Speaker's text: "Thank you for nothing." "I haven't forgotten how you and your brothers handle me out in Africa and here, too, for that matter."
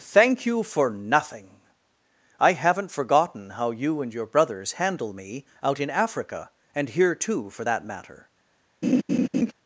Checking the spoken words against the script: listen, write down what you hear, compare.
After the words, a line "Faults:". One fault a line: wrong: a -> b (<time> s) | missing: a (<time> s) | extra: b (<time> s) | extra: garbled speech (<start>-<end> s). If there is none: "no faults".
"Thank you for nothing." "I haven't forgotten how you and your brothers handle me out in Africa and here, too, for that matter."
Faults:
no faults